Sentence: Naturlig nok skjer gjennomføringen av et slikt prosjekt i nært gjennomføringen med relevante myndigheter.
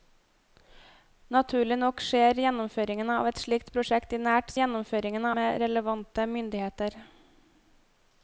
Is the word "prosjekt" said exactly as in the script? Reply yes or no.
yes